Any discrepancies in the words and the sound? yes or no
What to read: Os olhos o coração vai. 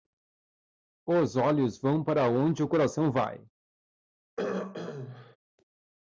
yes